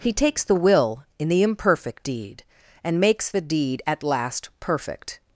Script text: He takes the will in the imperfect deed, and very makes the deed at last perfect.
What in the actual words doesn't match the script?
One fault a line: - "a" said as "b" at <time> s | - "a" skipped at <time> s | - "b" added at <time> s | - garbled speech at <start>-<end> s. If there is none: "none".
- "very" skipped at 3.0 s